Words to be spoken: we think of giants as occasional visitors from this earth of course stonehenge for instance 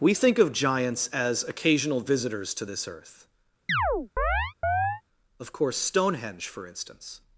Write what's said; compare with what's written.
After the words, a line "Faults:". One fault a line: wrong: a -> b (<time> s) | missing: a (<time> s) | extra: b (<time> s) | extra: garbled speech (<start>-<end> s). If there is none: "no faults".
we think of giants as occasional visitors to this earth of course stonehenge for instance
Faults:
wrong: from -> to (2.5 s)